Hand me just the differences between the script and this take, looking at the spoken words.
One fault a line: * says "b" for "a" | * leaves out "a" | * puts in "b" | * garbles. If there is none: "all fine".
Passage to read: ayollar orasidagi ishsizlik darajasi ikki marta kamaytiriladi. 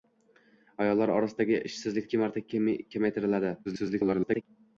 * leaves out "darajasi"
* garbles